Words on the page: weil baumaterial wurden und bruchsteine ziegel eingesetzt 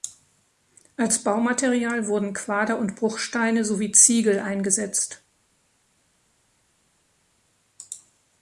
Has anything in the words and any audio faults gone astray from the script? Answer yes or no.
yes